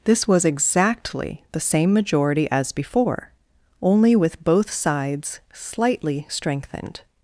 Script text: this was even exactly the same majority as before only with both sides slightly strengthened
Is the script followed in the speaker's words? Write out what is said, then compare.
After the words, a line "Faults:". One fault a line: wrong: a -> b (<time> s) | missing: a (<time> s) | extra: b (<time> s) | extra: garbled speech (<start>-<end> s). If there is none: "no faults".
this was exactly the same majority as before only with both sides slightly strengthened
Faults:
missing: even (0.5 s)